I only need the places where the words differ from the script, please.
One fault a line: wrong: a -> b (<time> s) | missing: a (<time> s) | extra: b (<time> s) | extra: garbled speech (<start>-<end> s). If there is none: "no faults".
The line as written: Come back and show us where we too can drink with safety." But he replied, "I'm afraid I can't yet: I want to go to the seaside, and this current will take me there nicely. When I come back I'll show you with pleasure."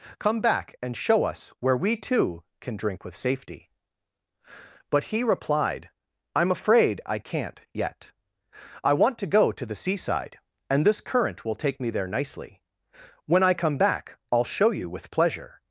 no faults